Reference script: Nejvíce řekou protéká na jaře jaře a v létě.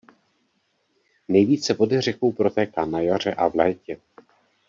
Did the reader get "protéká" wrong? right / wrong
right